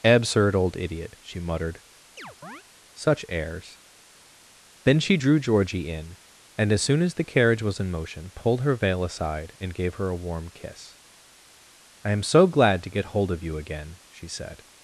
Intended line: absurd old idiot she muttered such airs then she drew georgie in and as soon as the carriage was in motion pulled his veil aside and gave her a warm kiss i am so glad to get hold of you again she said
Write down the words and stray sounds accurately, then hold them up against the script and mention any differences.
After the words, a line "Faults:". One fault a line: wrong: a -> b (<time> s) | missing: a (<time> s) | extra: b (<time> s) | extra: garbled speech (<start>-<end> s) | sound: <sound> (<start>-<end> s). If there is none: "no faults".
absurd old idiot she muttered such airs then she drew georgie in and as soon as the carriage was in motion pulled her veil aside and gave her a warm kiss i am so glad to get hold of you again she said
Faults:
sound: chirp (2.2-2.6 s)
wrong: his -> her (8.6 s)